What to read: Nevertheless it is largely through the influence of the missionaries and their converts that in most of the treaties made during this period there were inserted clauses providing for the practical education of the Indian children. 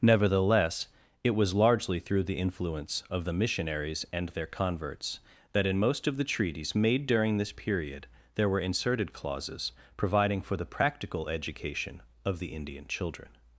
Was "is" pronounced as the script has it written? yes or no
no